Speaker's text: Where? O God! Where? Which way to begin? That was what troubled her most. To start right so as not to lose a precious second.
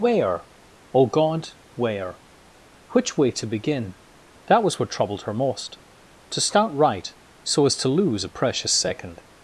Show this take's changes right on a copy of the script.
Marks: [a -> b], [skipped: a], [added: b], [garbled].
Where? O God! Where? Which way to begin? That was what troubled her most. To start right so as [skipped: not] to lose a precious second.